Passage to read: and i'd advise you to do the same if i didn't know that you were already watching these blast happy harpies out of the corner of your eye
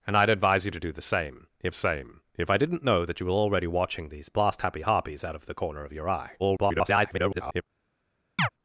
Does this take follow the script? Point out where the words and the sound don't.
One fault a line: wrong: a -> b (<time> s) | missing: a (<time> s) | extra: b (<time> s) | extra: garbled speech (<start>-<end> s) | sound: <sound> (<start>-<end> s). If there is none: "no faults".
extra: same if (1.7 s)
extra: garbled speech (6.4-7.6 s)
sound: chirp (8.4-8.5 s)